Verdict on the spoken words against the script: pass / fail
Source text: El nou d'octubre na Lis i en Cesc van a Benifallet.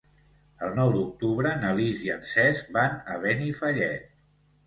pass